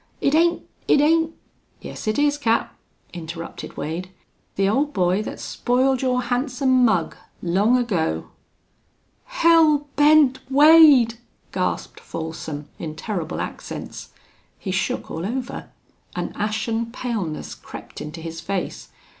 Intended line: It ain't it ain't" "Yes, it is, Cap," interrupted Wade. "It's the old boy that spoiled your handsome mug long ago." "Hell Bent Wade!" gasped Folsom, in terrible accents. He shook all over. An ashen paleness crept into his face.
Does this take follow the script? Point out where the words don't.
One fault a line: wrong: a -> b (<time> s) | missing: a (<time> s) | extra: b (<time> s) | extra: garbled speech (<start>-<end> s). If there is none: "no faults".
missing: It's (4.1 s)